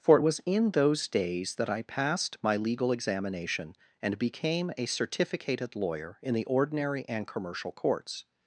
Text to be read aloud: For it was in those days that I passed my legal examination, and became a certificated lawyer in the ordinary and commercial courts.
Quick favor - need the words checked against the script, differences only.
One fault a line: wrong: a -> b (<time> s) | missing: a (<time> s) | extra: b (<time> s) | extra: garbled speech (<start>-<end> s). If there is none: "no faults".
no faults